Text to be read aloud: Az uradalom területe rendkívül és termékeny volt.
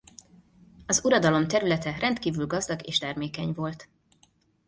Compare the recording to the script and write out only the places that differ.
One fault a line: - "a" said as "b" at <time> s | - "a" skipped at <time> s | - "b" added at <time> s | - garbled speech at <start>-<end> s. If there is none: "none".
- "gazdag" added at 2.5 s